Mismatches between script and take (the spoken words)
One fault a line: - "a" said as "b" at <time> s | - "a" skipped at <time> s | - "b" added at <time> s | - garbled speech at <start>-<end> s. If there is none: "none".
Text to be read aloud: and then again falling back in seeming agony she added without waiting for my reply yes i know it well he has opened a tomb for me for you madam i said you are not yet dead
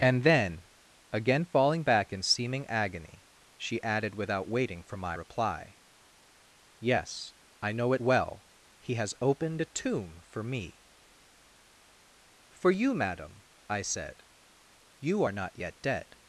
none